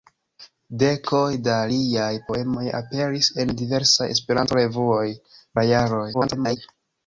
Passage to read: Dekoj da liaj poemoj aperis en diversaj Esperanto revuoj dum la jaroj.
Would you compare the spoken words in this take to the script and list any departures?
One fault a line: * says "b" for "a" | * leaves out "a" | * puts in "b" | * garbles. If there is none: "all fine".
* leaves out "dum"
* garbles